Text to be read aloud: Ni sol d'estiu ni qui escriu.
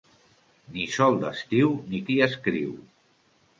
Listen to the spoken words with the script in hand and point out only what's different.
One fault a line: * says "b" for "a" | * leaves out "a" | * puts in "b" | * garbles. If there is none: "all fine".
all fine